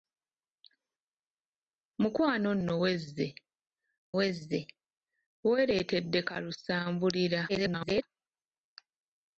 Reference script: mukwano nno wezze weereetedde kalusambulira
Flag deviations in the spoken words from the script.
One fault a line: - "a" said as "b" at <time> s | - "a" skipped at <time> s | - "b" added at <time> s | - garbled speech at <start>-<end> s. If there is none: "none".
- "wezze" added at 4.2 s
- garbled speech at 7.5-8.0 s